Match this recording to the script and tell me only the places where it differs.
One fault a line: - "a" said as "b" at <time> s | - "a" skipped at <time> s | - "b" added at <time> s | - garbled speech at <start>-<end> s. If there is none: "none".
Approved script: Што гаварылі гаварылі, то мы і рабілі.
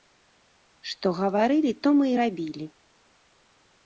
- "гаварылі" skipped at 1.7 s